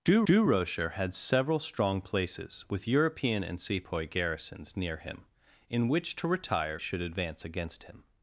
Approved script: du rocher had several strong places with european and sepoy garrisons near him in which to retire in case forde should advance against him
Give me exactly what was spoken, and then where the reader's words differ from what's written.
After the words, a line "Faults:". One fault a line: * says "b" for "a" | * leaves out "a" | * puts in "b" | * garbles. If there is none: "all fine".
du du rocher had several strong places with european and sepoy garrisons near him in which to retire should advance against him
Faults:
* puts in "du"
* leaves out "in case forde"